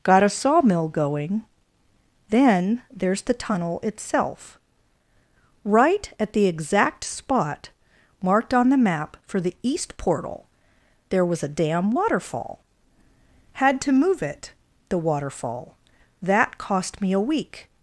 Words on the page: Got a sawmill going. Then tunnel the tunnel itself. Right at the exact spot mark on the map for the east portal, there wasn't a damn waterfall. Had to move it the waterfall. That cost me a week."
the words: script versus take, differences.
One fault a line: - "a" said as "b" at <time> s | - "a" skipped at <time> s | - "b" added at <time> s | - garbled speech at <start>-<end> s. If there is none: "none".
- "tunnel" said as "there's" at 3.0 s
- "mark" said as "marked" at 8.2 s
- "wasn't" said as "was" at 11.2 s